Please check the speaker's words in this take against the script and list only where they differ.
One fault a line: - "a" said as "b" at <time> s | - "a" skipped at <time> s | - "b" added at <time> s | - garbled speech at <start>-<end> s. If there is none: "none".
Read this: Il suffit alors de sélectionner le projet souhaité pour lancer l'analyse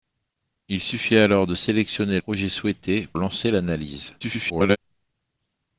- "le" skipped at 2.2 s
- "pour" skipped at 3.1 s
- garbled speech at 4.2-4.8 s